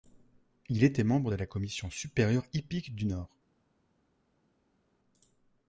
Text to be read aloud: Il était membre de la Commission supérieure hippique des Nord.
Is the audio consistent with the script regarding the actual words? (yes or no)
no